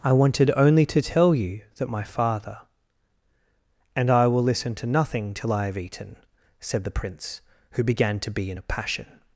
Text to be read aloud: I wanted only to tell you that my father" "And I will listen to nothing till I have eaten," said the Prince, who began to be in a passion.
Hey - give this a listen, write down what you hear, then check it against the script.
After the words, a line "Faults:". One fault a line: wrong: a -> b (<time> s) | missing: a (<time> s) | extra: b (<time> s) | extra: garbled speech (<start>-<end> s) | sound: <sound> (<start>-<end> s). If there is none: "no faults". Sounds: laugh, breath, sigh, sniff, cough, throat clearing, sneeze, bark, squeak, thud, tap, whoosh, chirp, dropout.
I wanted only to tell you that my father" "And I will listen to nothing till I have eaten," said the Prince, who began to be in a passion.
Faults:
no faults